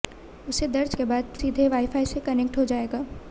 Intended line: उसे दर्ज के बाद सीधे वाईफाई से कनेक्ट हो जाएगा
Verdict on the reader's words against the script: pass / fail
pass